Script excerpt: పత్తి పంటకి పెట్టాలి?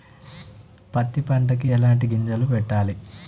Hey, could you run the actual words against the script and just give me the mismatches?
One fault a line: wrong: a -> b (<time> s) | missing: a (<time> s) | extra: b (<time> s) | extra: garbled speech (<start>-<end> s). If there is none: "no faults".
extra: ఎలాంటి గింజలు (1.7 s)